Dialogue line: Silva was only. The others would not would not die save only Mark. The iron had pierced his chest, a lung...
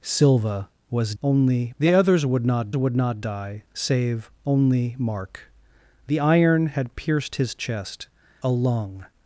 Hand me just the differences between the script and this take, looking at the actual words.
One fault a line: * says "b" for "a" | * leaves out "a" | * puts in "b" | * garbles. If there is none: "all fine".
all fine